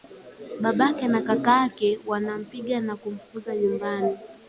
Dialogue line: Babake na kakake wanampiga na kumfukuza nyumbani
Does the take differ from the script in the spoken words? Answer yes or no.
no